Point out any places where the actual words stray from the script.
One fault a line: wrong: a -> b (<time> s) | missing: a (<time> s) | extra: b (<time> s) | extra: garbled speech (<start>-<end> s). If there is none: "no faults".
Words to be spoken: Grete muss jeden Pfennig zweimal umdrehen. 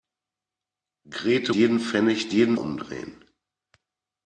missing: muss (1.5 s)
wrong: zweimal -> jeden (2.3 s)